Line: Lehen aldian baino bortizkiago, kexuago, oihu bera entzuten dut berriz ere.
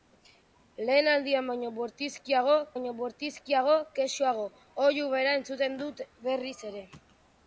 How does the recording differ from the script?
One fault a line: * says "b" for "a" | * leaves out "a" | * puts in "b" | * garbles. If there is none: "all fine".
* puts in "baino bortizkiago"